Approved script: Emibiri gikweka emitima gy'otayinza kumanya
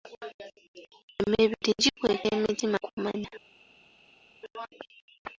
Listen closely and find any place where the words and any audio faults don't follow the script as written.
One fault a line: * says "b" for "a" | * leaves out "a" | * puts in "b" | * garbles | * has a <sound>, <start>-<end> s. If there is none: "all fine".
* leaves out "gy'otayinza"